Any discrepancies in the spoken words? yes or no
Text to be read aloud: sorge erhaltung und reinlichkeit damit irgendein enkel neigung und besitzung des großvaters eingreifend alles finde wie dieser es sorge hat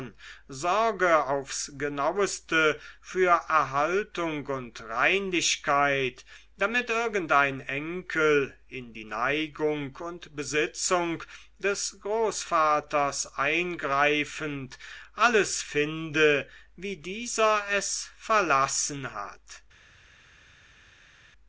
yes